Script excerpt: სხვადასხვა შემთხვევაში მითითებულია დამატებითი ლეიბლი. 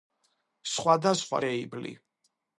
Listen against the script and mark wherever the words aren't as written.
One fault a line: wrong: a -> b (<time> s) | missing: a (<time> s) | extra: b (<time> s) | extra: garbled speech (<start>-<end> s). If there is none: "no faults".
missing: შემთხვევაში მითითებულია დამატებითი (1.4 s)